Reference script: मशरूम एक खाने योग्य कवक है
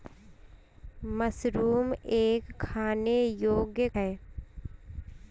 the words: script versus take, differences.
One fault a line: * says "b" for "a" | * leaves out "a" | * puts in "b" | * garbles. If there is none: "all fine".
* leaves out "कवक"